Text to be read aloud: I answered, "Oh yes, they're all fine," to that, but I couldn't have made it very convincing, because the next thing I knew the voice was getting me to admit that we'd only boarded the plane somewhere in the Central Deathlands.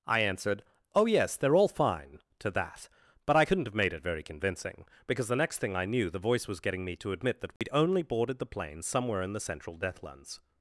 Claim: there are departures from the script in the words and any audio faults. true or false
true